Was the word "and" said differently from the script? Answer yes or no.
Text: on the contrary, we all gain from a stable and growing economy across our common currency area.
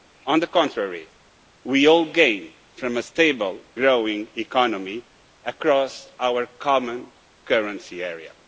yes